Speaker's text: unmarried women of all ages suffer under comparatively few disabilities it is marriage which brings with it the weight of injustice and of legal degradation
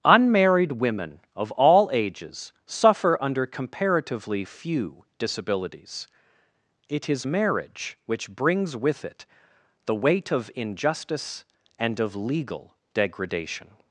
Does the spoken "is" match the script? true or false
true